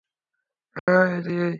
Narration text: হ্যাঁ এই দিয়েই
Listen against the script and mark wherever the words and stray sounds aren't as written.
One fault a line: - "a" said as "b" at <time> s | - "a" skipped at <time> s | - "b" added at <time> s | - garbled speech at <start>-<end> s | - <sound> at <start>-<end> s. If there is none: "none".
- dropout at 0.8-0.9 s